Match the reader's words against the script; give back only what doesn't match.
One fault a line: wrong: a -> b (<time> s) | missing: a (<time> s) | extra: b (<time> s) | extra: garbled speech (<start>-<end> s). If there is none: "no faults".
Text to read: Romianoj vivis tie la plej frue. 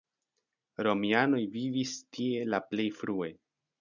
no faults